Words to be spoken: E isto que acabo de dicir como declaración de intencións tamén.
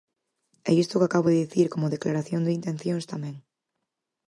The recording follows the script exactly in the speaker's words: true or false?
true